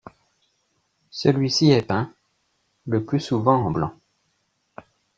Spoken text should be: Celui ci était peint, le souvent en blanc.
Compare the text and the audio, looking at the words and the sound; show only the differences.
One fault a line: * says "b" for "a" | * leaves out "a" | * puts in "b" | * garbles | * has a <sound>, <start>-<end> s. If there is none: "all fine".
* says "est" for "était"
* puts in "plus"